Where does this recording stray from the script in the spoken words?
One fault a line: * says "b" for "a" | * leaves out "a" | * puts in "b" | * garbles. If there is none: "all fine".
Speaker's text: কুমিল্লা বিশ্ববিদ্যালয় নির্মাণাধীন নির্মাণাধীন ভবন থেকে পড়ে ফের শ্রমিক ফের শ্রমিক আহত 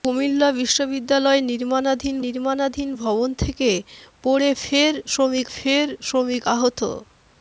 all fine